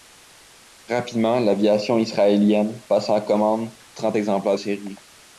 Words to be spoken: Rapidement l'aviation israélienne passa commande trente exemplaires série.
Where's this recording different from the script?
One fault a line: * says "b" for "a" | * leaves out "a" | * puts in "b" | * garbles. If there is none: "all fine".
all fine